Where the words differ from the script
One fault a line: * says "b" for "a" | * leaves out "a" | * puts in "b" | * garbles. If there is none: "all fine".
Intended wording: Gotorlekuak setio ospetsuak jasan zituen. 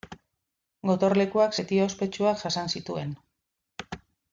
all fine